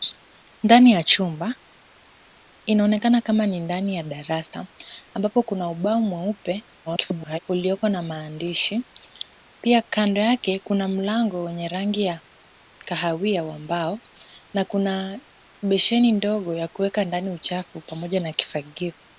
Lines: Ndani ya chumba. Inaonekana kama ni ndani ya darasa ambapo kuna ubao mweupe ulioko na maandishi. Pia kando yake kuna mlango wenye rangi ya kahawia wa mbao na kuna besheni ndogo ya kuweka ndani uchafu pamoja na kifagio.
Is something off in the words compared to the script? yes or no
yes